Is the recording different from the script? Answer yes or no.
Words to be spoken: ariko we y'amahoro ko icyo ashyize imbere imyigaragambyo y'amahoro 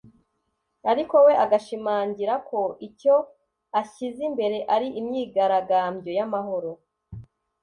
yes